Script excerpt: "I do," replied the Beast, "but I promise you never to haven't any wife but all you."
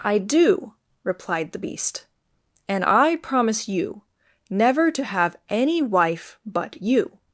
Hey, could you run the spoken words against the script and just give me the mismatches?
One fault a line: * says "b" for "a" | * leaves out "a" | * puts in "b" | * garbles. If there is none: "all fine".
* says "and" for "but"
* says "have" for "haven't"
* leaves out "all"